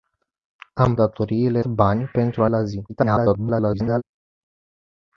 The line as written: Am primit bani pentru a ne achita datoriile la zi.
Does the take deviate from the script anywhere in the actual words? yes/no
yes